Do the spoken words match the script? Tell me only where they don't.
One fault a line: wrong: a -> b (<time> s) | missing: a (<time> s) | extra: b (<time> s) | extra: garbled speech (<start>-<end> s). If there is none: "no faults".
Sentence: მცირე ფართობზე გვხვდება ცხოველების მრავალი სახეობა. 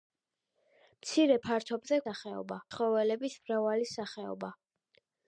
wrong: გვხვდება -> სახეობა (2.0 s)